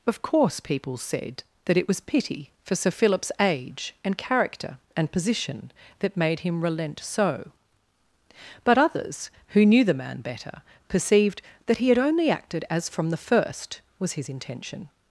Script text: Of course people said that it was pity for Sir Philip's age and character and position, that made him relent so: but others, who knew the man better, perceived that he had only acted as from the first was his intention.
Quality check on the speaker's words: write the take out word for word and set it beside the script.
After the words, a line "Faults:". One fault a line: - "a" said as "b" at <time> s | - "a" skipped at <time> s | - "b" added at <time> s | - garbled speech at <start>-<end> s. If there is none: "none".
Of course people said that it was pity for Sir Philip's age and character and position, that made him relent so: but others, who knew the man better, perceived that he had only acted as from the first was his intention.
Faults:
none